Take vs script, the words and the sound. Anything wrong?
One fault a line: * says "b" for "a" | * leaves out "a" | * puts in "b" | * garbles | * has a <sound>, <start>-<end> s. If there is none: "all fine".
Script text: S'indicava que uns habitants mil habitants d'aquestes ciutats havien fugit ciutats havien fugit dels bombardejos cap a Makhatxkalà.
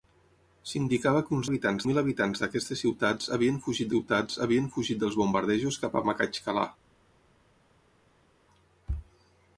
all fine